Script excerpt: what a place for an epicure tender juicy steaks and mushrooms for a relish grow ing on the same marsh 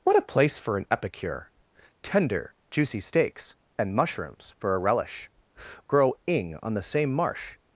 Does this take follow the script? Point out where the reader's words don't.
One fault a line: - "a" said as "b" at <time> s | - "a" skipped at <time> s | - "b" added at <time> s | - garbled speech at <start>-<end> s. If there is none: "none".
none